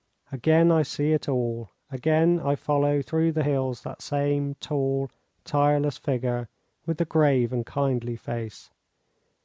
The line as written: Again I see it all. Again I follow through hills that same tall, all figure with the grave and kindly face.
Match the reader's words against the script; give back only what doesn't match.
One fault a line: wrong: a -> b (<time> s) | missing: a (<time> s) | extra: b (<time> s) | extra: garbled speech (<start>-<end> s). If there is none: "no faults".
extra: the (3.3 s)
wrong: all -> tireless (5.4 s)